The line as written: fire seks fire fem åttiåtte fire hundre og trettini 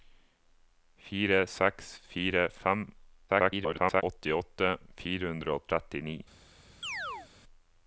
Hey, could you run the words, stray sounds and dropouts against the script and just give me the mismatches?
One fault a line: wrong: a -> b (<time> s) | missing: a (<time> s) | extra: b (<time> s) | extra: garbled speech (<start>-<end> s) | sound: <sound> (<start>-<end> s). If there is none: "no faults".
extra: garbled speech (3.3-4.0 s)
sound: chirp (6.8-7.3 s)